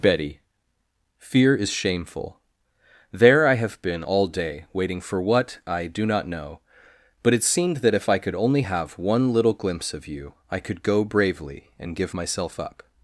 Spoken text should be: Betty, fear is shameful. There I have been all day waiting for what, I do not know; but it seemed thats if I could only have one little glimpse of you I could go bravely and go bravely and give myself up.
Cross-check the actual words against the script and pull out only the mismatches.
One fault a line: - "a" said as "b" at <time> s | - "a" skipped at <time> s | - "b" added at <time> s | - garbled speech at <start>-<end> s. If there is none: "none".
- "thats" said as "that" at 7.8 s
- "go bravely and" skipped at 11.9 s